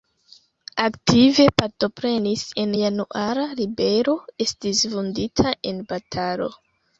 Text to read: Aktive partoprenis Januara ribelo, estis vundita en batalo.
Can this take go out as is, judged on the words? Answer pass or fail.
fail